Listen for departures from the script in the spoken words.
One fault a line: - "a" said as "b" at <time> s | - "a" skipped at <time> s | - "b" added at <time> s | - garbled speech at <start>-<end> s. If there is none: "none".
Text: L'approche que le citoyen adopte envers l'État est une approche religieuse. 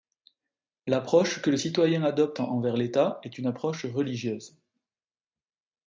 none